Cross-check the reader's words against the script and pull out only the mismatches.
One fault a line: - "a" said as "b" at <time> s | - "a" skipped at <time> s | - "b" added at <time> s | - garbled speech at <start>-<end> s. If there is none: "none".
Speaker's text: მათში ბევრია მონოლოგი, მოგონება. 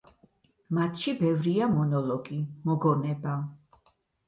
none